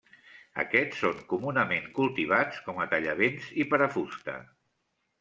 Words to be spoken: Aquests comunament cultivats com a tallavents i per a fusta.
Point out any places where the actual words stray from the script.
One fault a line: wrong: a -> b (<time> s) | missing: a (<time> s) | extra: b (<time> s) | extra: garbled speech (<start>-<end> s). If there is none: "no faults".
extra: són (1.0 s)